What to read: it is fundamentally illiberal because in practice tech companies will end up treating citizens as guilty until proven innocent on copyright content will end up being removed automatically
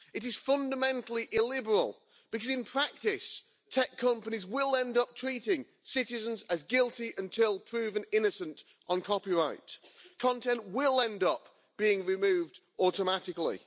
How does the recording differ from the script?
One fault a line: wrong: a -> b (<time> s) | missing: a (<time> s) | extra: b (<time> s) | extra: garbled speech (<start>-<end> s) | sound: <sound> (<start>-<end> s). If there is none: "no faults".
no faults